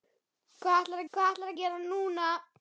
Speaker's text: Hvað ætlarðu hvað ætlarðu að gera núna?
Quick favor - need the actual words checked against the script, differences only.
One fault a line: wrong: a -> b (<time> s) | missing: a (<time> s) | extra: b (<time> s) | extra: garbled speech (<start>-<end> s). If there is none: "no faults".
no faults